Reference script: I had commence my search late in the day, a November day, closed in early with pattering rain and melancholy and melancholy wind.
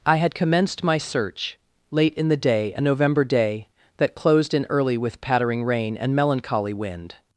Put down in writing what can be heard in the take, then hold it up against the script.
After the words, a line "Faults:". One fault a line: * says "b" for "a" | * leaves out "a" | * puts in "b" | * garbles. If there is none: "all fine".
I had commenced my search late in the day, a November day, that closed in early with pattering rain and melancholy wind.
Faults:
* says "commenced" for "commence"
* puts in "that"
* leaves out "and melancholy"